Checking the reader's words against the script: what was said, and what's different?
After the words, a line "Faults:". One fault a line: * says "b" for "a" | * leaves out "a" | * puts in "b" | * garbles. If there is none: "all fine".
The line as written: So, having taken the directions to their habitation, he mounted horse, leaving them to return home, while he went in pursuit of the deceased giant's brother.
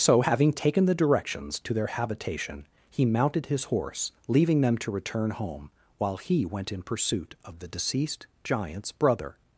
So, having taken the directions to their habitation, he mounted his horse, leaving them to return home, while he went in pursuit of the deceased giant's brother.
Faults:
* puts in "his"